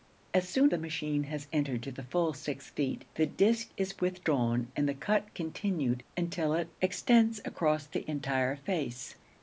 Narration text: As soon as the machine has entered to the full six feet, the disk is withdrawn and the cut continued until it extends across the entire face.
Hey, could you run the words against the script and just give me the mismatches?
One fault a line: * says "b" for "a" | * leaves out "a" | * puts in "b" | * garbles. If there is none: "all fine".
* leaves out "as"